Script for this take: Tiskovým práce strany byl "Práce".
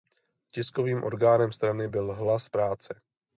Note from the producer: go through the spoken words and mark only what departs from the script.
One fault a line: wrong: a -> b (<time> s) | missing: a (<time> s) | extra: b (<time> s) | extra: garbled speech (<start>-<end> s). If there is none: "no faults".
wrong: práce -> orgánem (1.0 s)
extra: Hlas (2.1 s)